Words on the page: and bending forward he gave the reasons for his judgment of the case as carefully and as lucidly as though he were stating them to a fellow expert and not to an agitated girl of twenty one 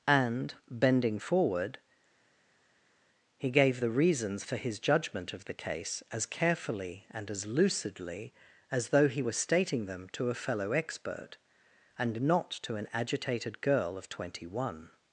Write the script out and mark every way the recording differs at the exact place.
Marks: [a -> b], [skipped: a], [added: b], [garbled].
and bending forward he gave the reasons for his judgment of the case as carefully and as lucidly as though he were stating them to a fellow expert and not to an agitated girl of twenty one